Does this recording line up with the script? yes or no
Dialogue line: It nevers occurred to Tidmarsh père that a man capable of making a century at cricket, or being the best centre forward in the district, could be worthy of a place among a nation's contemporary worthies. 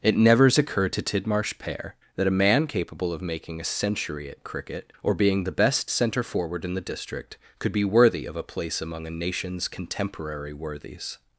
yes